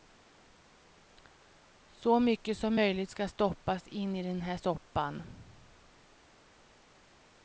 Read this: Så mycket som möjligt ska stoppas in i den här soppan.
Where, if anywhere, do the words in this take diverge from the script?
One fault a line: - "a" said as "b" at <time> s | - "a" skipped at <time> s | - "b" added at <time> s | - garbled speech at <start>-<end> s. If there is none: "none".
none